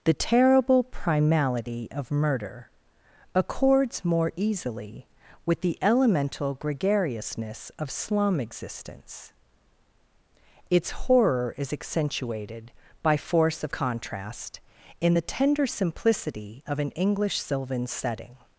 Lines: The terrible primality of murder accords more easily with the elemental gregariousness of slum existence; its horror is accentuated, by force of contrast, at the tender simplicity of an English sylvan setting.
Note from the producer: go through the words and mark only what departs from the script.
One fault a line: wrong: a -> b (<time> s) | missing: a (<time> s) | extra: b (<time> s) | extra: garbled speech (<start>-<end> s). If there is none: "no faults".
wrong: at -> in (15.0 s)